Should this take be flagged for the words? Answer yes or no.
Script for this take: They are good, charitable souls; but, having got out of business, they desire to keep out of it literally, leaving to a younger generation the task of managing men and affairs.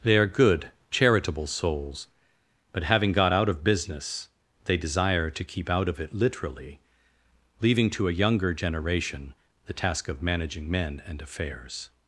no